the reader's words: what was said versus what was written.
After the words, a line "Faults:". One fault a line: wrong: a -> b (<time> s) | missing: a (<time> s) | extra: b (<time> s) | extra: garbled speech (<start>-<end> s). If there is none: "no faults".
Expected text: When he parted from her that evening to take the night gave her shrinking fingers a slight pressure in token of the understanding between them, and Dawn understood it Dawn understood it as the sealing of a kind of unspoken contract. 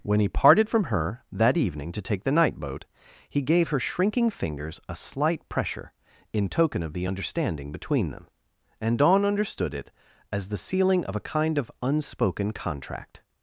When he parted from her that evening to take the night boat, he gave her shrinking fingers a slight pressure in token of the understanding between them, and Dawn understood it as the sealing of a kind of unspoken contract.
Faults:
extra: boat he (2.5 s)
missing: Dawn understood it (9.9 s)